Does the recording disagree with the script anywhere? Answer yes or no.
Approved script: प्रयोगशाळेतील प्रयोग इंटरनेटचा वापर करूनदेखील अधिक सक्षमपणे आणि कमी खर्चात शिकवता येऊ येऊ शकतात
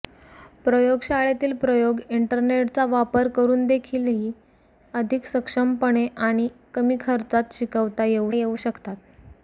no